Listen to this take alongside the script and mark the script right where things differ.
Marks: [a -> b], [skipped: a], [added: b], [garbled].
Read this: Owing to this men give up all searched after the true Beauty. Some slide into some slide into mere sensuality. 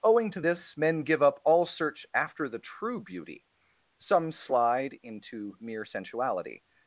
Owing to this men give up all [searched -> search] after the true Beauty. Some slide into [skipped: some slide into] mere sensuality.